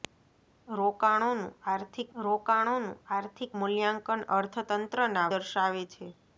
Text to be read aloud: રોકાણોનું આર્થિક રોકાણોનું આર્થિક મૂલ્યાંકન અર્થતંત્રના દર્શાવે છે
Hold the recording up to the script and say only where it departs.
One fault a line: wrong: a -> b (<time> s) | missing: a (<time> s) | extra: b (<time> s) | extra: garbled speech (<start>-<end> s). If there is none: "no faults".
no faults